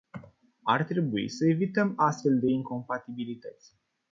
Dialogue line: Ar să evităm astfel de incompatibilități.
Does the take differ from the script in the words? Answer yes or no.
yes